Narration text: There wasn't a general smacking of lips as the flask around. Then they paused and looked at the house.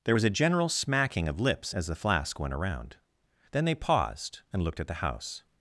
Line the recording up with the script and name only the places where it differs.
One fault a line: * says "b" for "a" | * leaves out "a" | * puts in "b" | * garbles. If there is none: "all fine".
* says "was" for "wasn't"
* puts in "went"